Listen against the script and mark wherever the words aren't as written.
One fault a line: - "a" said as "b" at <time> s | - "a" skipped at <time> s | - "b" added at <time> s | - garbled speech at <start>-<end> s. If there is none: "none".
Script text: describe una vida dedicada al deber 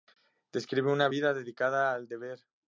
none